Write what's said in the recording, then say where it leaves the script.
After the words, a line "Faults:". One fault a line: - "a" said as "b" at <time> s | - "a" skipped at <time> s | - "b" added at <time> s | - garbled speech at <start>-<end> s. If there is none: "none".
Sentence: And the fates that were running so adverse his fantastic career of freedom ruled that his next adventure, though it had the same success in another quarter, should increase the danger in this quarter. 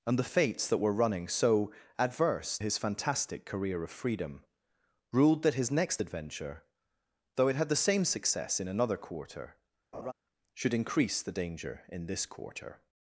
And the fates that were running so adverse his fantastic career of freedom ruled that his next adventure, though it had the same success in another quarter, should increase the danger in this quarter.
Faults:
none